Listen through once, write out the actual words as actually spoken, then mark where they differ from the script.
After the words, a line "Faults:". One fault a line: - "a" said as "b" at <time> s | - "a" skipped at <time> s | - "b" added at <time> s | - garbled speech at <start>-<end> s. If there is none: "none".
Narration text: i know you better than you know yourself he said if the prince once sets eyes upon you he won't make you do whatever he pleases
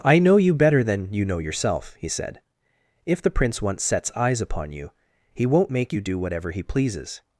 i know you better than you know yourself he said if the prince once sets eyes upon you he won't make you do whatever he pleases
Faults:
none